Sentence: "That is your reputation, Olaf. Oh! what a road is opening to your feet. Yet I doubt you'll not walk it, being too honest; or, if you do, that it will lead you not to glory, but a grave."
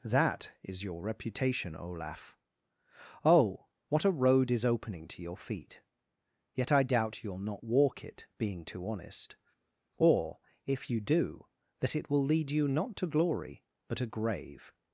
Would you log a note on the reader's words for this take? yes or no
no